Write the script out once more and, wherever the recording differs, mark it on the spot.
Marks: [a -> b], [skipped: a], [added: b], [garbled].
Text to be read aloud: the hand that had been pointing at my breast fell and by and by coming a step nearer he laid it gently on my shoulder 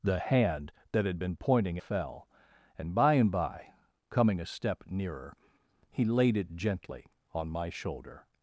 the hand that had been pointing [skipped: at my breast] fell and by and by coming a step nearer he laid it gently on my shoulder